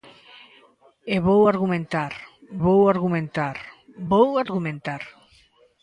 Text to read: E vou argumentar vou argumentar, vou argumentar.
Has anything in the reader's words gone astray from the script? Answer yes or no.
no